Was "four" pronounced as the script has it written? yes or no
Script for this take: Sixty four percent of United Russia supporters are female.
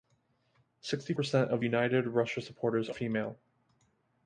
no